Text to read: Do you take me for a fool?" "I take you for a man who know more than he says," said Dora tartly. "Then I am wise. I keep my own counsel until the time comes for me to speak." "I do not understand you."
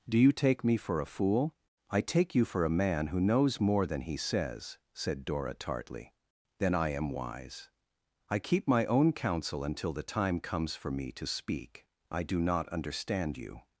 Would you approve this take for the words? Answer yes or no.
no